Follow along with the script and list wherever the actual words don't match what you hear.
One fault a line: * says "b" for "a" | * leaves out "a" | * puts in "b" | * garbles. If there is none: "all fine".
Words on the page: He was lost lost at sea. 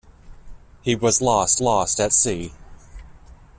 all fine